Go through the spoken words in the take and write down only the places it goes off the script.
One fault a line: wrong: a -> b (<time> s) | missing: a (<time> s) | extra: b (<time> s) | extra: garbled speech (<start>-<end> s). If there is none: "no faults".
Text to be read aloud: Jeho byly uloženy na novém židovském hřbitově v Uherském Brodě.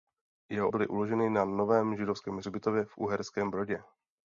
no faults